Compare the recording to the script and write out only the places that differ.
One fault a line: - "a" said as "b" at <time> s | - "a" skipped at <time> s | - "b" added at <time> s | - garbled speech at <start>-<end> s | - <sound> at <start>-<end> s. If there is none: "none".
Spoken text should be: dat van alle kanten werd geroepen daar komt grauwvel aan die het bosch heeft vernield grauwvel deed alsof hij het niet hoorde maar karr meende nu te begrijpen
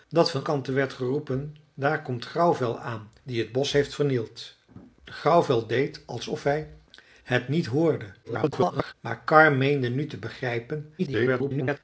- "alle" skipped at 0.5 s
- garbled speech at 8.2-8.9 s
- garbled speech at 11.0-11.8 s